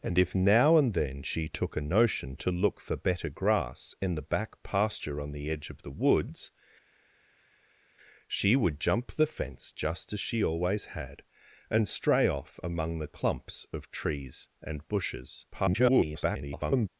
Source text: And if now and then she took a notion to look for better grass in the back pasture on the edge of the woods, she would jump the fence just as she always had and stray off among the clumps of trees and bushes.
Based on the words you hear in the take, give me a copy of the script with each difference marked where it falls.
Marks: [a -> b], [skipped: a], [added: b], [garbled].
And if now and then she took a notion to look for better grass in the back pasture on the edge of the woods, she would jump the fence just as she always had and stray off among the clumps of trees and bushes. [garbled]